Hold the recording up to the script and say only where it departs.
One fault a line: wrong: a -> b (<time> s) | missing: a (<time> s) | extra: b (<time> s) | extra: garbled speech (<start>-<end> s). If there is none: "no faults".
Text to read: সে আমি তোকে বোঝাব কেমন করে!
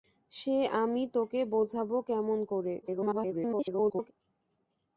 extra: garbled speech (2.8-4.1 s)